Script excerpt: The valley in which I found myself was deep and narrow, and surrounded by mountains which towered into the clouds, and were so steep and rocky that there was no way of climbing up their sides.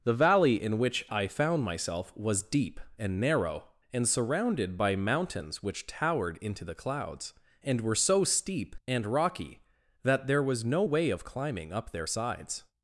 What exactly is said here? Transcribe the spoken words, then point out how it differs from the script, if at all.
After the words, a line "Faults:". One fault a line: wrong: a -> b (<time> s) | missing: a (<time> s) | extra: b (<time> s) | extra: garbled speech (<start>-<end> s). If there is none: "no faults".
The valley in which I found myself was deep and narrow, and surrounded by mountains which towered into the clouds, and were so steep and rocky that there was no way of climbing up their sides.
Faults:
no faults